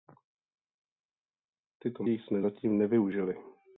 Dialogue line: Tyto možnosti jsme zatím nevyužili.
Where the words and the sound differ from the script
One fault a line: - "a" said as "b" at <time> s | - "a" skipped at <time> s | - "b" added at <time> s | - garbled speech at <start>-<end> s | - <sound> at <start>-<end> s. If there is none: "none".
- "možnosti" skipped at 2.0 s